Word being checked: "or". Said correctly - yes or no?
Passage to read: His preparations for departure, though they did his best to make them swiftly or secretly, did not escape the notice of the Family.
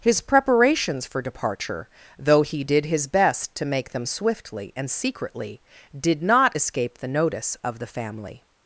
no